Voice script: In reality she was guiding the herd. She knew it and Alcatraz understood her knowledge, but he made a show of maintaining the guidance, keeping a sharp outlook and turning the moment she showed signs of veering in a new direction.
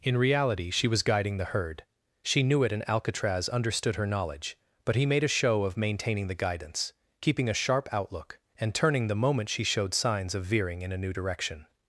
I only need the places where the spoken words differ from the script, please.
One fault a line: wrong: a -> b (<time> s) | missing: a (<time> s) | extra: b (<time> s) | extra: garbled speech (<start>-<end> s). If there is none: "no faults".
no faults